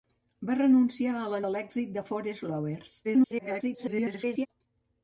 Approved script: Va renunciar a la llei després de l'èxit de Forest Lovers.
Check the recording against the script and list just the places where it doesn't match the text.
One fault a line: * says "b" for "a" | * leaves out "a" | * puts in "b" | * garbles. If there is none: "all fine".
* leaves out "llei després"
* garbles